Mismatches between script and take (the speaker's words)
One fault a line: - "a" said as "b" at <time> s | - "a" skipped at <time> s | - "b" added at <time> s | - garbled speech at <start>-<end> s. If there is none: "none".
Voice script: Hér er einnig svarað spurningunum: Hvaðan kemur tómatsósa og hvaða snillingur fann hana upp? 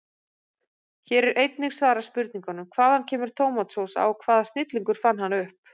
none